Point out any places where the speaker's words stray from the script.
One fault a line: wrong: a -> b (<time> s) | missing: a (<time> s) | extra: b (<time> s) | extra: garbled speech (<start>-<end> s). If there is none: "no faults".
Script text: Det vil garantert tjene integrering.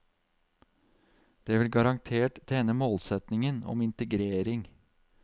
extra: målsetningen om (2.7 s)